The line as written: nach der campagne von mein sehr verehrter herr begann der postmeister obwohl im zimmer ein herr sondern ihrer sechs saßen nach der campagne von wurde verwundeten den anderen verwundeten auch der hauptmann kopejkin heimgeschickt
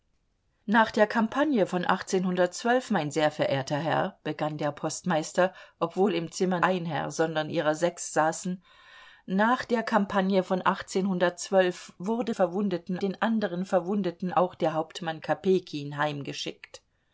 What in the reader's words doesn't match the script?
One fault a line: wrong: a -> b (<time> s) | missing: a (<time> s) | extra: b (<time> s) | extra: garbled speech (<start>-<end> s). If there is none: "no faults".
no faults